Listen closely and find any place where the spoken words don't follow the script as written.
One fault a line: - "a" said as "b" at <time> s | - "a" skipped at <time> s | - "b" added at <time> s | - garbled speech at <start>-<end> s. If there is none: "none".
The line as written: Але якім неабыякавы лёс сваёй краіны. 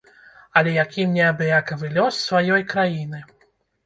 none